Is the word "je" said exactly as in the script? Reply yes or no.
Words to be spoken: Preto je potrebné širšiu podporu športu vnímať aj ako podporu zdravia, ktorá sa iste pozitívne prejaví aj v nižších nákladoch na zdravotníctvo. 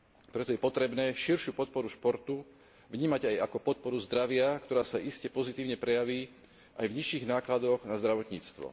yes